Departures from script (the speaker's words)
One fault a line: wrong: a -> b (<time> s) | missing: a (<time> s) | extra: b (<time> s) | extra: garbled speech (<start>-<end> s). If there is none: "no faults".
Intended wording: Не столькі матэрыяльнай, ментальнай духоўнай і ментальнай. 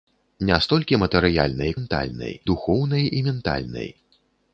no faults